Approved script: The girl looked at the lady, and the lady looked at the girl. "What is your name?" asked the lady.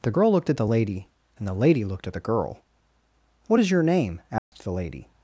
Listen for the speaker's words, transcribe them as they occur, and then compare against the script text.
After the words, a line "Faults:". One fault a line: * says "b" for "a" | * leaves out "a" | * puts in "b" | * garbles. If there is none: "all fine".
The girl looked at the lady, and the lady looked at the girl. "What is your name?" asked the lady.
Faults:
all fine